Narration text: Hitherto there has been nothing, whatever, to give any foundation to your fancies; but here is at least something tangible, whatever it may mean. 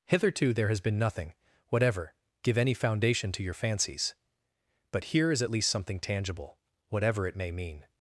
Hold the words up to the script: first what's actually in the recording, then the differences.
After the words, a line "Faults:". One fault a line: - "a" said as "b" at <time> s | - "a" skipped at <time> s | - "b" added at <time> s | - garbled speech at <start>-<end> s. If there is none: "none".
Hitherto there has been nothing, whatever, give any foundation to your fancies; but here is at least something tangible, whatever it may mean.
Faults:
- "to" skipped at 2.1 s